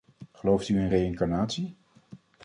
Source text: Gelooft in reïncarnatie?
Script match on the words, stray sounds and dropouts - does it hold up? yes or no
no